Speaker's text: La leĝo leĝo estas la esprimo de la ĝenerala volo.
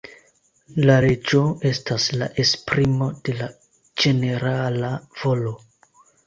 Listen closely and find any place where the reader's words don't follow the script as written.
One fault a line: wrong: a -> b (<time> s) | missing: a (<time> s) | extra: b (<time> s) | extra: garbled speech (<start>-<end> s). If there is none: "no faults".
missing: leĝo (1.4 s)